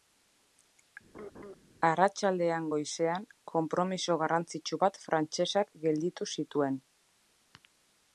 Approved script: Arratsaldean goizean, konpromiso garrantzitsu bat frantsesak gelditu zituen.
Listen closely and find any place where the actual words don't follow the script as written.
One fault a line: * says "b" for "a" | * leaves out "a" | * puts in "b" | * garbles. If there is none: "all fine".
all fine